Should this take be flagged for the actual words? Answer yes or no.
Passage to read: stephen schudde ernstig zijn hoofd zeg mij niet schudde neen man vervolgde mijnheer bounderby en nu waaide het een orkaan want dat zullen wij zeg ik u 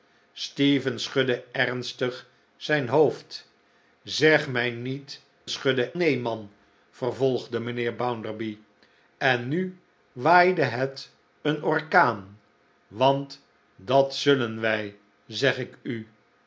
no